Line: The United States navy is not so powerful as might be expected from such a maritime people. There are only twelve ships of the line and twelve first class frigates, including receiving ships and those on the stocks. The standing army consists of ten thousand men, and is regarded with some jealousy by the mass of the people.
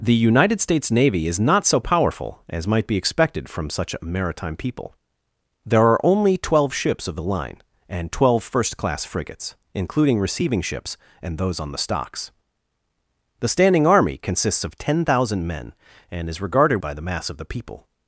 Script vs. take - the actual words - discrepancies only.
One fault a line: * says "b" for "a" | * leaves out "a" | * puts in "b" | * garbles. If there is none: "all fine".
* leaves out "with some jealousy"